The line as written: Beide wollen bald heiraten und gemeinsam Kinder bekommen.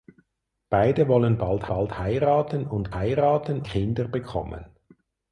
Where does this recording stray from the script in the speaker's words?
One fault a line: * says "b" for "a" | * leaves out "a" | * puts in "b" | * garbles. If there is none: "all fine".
* puts in "bald"
* says "heiraten" for "gemeinsam"